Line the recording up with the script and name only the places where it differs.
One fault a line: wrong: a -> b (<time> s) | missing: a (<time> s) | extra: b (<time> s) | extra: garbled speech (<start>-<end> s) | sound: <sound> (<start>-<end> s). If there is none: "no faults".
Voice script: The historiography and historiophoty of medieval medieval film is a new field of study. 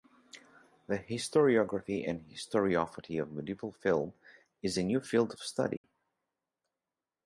missing: medieval (3.7 s)
sound: dropout (5.8-5.8 s)